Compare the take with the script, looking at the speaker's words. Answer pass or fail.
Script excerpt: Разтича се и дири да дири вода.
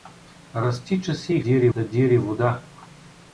pass